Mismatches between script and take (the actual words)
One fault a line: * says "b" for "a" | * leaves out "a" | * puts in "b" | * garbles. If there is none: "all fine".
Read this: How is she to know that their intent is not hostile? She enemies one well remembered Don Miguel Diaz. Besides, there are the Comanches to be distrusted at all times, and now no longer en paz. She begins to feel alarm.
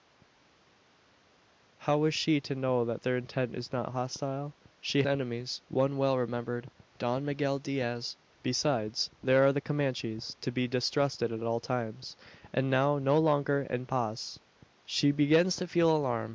all fine